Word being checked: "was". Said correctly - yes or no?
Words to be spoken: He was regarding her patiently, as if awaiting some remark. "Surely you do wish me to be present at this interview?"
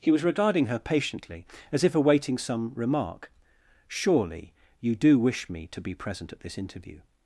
yes